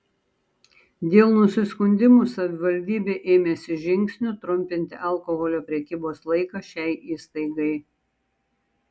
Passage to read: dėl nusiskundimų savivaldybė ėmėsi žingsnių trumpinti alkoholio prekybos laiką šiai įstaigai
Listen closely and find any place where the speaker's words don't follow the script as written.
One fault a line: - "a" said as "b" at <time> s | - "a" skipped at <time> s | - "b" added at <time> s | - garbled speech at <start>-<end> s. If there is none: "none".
none